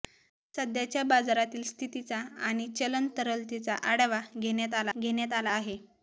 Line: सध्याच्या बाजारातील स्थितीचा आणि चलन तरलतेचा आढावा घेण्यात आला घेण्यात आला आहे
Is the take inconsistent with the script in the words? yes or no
no